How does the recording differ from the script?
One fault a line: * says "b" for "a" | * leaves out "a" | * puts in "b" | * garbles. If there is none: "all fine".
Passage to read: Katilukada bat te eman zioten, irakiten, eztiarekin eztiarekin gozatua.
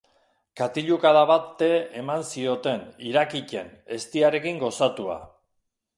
* leaves out "eztiarekin"